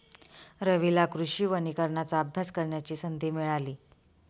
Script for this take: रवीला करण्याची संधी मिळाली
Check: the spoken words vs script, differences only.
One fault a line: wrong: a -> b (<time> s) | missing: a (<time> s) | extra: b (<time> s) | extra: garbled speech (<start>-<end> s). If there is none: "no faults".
extra: कृषी वनीकरणाचा अभ्यास (1.1 s)